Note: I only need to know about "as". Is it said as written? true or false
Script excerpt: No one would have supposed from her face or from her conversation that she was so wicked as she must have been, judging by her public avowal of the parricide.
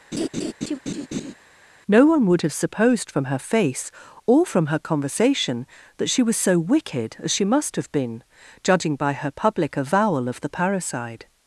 true